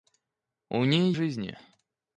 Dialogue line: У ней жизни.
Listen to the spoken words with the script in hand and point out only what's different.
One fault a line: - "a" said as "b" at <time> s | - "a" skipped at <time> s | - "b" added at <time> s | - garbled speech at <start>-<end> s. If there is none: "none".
none